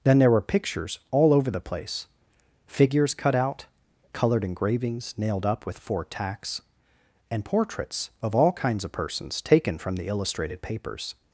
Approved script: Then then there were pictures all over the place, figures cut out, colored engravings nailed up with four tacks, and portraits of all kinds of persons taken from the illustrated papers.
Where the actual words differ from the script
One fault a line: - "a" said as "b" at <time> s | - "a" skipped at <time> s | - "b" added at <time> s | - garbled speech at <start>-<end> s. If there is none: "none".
- "then" skipped at 0.2 s